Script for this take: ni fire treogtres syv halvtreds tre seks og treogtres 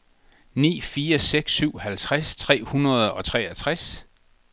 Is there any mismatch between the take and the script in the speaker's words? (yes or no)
yes